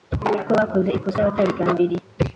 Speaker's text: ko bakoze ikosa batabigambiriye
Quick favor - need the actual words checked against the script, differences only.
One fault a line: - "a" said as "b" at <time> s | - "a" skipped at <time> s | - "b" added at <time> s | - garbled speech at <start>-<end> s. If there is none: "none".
none